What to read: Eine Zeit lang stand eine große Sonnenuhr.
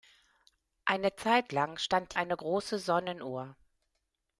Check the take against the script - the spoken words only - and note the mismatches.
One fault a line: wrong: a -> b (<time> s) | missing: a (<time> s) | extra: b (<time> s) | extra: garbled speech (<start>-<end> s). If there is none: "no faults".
no faults